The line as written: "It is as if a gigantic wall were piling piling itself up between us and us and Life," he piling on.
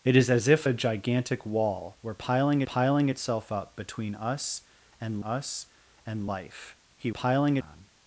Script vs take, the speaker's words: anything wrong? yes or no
no